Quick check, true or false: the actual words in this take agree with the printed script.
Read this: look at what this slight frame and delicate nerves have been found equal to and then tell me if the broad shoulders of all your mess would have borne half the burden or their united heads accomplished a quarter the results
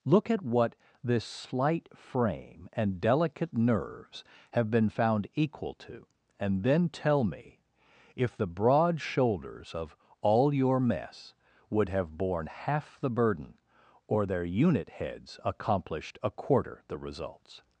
false